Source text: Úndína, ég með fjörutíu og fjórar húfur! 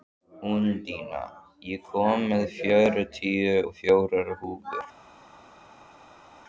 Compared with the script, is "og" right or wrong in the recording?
right